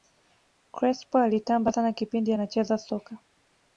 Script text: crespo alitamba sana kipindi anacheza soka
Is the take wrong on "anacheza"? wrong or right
right